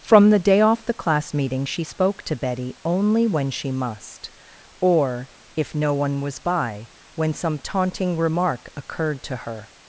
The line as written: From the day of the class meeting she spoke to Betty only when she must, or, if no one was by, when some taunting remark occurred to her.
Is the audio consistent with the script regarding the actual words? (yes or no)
no